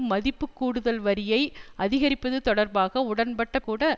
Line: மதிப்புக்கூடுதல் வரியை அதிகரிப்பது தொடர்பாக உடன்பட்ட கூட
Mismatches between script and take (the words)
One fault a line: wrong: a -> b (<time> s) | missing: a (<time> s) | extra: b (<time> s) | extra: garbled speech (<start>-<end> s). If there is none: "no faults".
no faults